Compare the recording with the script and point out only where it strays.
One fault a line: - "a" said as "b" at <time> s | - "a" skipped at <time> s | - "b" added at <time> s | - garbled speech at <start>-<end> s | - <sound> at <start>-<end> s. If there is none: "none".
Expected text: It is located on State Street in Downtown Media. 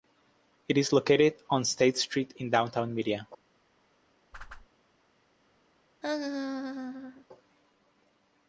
- whoosh at 4.3-4.7 s
- laugh at 6.0-7.3 s